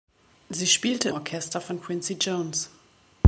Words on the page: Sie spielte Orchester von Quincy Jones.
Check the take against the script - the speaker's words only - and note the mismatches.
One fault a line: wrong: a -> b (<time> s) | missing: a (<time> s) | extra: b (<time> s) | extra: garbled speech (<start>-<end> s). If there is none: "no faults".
no faults